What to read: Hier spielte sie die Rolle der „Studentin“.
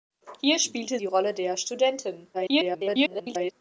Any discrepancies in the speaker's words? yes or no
yes